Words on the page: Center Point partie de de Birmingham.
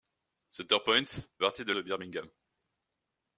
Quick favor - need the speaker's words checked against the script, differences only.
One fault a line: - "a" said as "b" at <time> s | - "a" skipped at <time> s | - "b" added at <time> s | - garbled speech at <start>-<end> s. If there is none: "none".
none